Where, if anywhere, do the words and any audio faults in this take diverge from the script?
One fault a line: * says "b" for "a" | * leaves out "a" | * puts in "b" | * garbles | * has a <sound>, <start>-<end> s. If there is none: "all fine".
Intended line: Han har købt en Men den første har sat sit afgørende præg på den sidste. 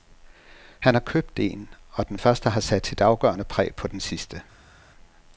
* says "Og" for "Men"